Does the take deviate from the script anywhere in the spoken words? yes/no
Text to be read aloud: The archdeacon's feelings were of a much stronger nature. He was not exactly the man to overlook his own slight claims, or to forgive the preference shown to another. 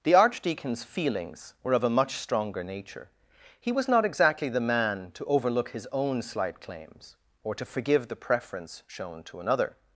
no